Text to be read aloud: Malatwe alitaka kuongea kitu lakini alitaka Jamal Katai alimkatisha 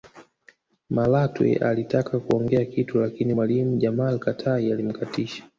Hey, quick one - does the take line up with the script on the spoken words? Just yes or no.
no